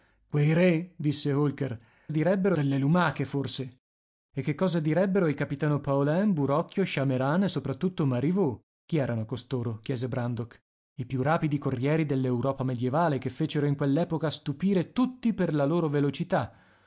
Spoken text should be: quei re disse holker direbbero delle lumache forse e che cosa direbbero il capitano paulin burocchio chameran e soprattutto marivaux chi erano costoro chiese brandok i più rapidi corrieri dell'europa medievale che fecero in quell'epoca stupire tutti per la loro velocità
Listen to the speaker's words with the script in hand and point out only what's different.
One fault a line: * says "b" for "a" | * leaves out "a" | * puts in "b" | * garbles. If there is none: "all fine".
all fine